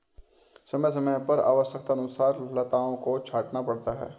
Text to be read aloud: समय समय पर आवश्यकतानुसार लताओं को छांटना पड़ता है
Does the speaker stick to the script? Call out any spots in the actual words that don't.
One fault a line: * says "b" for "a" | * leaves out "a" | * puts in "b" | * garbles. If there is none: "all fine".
all fine